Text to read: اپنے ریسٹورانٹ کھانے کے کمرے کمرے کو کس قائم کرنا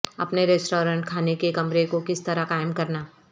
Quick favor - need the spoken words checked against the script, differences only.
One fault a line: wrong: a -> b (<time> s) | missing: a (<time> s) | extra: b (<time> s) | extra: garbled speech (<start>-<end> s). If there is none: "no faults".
missing: کمرے (1.8 s)
extra: طرح (2.2 s)